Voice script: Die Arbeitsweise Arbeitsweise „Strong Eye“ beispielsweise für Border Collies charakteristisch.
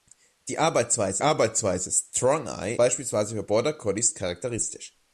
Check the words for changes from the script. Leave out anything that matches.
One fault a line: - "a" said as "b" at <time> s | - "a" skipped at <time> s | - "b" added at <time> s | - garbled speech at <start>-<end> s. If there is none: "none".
none